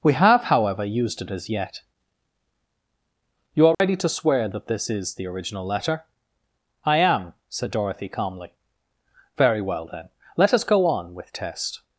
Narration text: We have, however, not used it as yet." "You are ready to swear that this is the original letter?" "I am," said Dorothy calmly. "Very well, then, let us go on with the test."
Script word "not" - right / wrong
wrong